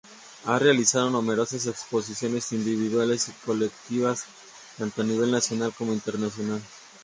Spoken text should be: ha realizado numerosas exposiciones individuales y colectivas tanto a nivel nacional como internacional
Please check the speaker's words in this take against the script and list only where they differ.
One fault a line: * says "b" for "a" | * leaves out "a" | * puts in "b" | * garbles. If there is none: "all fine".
all fine